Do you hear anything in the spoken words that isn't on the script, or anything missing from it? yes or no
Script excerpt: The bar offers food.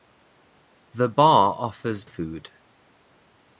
no